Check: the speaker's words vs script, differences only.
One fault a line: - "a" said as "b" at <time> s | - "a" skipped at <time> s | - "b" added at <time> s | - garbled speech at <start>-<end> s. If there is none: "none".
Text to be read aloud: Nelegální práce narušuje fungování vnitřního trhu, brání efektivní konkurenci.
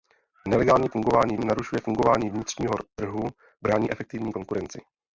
- "práce" said as "fungování" at 0.9 s